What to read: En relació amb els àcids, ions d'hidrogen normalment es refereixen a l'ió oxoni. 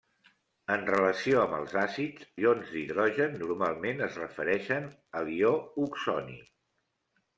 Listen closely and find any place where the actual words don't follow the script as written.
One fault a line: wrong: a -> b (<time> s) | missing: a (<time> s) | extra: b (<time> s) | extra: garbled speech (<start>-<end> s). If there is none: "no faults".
no faults